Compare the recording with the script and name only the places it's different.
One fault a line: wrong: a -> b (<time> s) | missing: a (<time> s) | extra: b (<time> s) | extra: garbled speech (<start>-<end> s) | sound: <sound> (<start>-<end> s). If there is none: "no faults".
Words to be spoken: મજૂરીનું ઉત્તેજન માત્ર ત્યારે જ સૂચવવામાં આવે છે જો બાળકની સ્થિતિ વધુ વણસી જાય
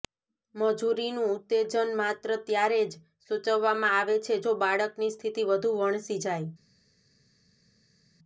no faults